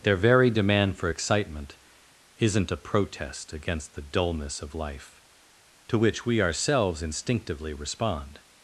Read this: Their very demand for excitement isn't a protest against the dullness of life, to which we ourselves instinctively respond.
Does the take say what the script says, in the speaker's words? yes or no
yes